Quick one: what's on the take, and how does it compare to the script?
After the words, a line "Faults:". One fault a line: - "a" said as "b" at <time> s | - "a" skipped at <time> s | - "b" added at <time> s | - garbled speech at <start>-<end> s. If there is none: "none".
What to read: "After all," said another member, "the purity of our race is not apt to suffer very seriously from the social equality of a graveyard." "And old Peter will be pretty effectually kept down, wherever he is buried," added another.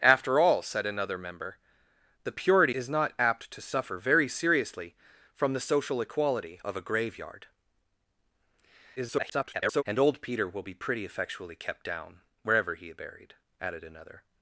"After all," said another member, "the purity is not apt to suffer very seriously from the social equality of a graveyard." [garbled] "And old Peter will be pretty effectually kept down, wherever he is buried," added another.
Faults:
- "of our race" skipped at 2.8 s
- garbled speech at 9.0-9.8 s